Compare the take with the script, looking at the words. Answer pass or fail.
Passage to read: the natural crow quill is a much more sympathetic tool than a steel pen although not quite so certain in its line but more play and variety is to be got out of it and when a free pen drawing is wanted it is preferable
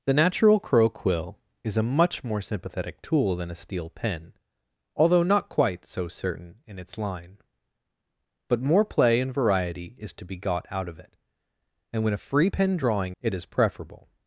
fail